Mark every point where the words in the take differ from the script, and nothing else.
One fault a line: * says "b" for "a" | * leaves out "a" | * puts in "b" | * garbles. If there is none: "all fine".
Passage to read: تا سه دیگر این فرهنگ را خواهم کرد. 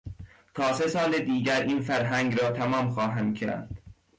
* puts in "سال"
* puts in "تمام"